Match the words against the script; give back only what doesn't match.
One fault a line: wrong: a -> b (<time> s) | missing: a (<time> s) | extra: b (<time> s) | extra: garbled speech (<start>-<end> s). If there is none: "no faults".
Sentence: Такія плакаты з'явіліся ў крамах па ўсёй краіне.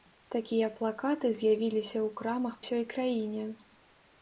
missing: па (2.6 s)